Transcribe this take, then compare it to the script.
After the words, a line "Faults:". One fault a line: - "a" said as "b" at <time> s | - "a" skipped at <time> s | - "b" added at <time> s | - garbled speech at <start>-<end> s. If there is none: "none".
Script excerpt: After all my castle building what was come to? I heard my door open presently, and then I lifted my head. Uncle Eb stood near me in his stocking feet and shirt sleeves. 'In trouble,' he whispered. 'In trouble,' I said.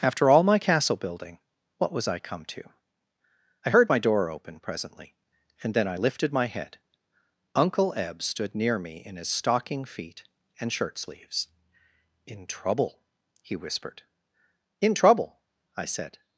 After all my castle building what was I come to? I heard my door open presently, and then I lifted my head. Uncle Eb stood near me in his stocking feet and shirt sleeves. 'In trouble,' he whispered. 'In trouble,' I said.
Faults:
- "I" added at 2.1 s